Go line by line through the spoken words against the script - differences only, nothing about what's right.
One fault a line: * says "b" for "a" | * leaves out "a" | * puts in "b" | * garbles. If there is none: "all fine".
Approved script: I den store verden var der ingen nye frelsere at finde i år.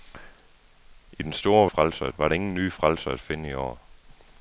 * says "frelsere" for "verden"